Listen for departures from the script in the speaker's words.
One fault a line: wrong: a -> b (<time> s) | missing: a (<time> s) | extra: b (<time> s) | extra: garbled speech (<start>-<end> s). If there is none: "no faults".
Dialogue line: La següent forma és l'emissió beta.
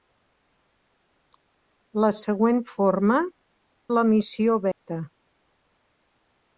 missing: és (3.2 s)